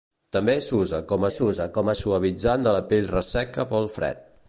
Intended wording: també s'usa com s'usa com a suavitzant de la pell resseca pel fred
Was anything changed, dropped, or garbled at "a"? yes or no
no